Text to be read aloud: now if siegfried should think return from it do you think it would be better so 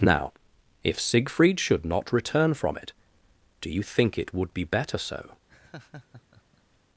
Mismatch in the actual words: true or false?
true